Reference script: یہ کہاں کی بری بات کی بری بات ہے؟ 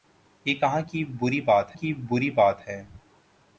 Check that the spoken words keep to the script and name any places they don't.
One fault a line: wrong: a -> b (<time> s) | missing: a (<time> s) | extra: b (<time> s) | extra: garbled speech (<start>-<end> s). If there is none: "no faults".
no faults